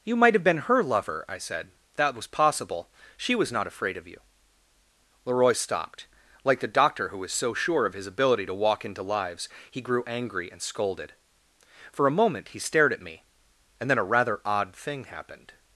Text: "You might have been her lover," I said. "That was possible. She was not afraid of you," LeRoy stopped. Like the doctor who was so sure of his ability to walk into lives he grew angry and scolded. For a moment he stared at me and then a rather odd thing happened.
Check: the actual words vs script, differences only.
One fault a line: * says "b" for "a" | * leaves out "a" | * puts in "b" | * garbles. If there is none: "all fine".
all fine